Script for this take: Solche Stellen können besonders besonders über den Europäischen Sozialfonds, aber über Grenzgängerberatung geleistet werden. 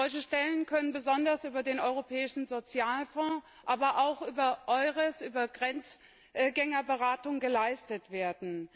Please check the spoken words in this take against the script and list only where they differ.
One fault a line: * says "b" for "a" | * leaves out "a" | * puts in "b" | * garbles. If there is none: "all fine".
* leaves out "besonders"
* puts in "auch über EURES"